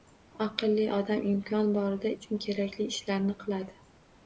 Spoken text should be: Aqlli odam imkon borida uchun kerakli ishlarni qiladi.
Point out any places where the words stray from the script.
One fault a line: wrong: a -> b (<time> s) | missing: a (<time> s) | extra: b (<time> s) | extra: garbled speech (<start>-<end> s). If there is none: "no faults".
no faults